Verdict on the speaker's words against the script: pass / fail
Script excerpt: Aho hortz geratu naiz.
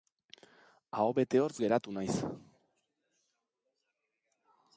fail